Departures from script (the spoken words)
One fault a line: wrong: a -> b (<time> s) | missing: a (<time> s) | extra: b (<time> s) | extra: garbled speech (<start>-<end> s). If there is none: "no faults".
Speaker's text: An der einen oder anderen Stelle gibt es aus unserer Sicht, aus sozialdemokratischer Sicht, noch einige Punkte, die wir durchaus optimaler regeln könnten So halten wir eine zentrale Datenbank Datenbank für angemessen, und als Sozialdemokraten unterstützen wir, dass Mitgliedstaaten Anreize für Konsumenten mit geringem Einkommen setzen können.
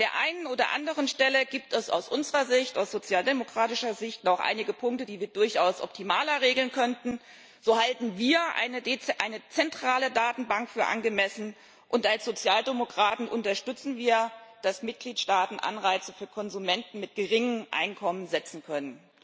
missing: Datenbank (10.7 s)